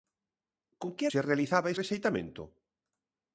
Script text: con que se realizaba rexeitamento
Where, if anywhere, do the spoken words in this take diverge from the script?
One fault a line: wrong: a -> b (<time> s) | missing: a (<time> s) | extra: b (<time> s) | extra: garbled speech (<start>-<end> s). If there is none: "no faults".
no faults